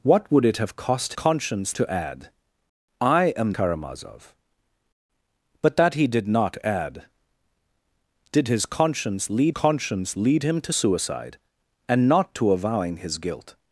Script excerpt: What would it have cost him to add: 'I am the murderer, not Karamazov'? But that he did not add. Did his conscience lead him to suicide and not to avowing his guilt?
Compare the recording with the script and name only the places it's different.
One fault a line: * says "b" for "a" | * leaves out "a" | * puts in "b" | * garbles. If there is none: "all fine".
* says "conscience" for "him"
* leaves out "the murderer not"
* puts in "conscience lead"